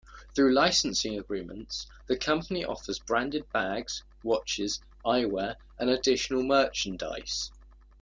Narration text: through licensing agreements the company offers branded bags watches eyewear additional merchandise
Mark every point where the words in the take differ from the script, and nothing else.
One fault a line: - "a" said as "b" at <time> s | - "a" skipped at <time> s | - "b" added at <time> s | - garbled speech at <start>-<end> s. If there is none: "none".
- "and" added at 5.8 s